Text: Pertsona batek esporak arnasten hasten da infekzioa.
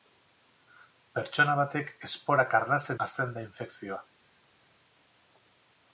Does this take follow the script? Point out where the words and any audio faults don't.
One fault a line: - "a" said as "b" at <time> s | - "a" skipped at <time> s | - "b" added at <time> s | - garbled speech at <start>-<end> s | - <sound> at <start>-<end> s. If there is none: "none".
none